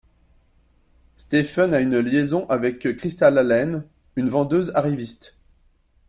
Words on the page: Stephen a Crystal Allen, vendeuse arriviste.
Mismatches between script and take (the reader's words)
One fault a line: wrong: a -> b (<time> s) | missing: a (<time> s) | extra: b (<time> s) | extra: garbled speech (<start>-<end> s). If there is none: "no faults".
extra: une liaison avec (1.8 s)
extra: une (4.1 s)